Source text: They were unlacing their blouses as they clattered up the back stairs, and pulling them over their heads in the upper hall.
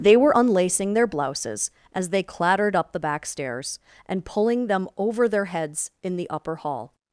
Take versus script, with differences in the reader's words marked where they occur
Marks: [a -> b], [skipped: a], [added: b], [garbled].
They were unlacing their blouses as they clattered up the back stairs, and pulling them over their heads in the upper hall.